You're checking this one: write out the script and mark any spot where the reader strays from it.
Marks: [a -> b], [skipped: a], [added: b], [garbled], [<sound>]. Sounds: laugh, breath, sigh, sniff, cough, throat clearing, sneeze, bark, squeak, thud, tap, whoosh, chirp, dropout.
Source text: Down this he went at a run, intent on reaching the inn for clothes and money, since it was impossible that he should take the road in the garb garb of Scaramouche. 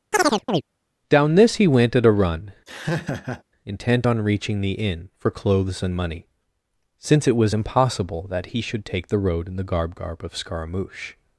[chirp] Down this he went at a run, [laugh] intent on reaching the inn for clothes and money, since it was impossible that he should take the road in the garb garb of Scaramouche.